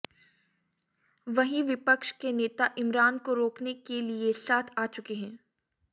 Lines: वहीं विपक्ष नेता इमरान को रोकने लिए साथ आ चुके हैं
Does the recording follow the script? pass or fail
fail